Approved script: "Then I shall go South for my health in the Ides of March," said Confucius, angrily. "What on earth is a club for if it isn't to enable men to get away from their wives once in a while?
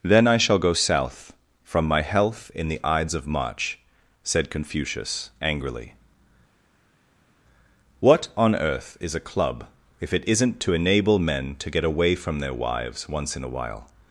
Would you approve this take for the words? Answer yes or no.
no